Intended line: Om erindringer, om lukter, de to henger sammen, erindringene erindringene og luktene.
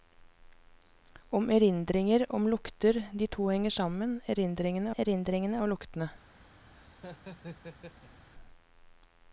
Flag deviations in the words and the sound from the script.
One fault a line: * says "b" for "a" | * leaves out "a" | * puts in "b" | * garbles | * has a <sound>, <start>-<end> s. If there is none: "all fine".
* has a laugh, 6.7-8.3 s